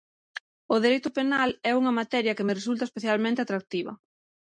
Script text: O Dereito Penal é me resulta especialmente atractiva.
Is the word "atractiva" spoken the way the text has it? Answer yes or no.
yes